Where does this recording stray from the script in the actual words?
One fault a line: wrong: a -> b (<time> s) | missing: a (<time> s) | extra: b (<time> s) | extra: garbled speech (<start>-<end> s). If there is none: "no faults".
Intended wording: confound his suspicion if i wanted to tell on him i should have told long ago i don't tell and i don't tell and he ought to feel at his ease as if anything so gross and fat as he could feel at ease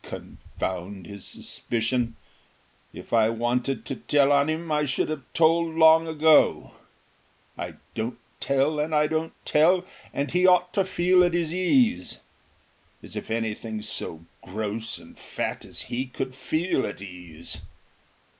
no faults